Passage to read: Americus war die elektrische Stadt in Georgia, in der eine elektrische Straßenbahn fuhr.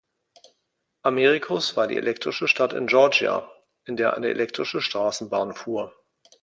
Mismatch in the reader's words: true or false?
false